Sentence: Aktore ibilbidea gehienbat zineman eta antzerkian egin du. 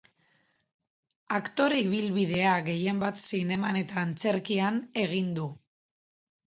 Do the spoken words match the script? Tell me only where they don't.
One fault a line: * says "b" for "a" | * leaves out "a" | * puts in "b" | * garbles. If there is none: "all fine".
all fine